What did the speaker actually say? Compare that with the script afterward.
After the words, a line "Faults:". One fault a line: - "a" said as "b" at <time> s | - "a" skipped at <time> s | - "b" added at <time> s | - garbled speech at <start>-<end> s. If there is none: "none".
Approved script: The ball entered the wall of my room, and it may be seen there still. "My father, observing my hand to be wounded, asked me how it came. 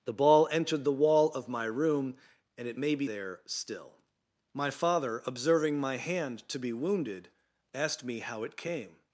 The ball entered the wall of my room, and it may be there still. "My father, observing my hand to be wounded, asked me how it came.
Faults:
- "seen" skipped at 3.1 s